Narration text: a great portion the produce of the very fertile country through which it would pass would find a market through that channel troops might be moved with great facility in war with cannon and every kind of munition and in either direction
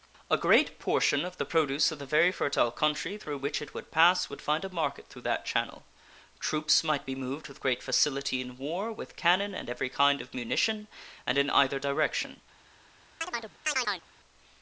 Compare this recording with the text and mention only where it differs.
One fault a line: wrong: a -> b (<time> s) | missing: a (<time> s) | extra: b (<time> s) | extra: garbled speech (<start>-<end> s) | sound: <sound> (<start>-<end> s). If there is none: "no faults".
extra: of (1.2 s)
sound: chirp (13.2-14.1 s)